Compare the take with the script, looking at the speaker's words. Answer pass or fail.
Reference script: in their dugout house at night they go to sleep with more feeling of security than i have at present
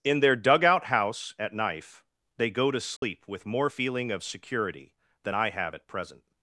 fail